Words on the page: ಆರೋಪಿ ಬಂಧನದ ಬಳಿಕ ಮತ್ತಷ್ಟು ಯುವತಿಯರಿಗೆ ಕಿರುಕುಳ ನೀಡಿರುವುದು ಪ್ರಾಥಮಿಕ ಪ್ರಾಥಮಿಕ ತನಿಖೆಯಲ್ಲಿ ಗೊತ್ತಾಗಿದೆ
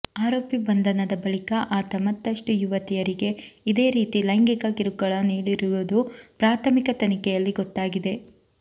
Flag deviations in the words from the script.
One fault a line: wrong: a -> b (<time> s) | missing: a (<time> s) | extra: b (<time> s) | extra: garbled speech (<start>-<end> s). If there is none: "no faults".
extra: ಆತ (1.7 s)
extra: ಇದೇ ರೀತಿ ಲೈಂಗಿಕ (3.7 s)
missing: ಪ್ರಾಥಮಿಕ (7.0 s)